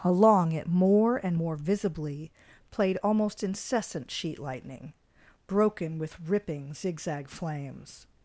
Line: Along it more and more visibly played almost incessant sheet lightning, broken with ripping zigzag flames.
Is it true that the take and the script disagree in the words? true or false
false